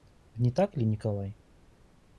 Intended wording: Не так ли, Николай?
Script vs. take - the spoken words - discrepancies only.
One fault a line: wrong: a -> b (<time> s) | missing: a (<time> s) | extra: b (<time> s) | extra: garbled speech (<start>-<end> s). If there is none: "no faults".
no faults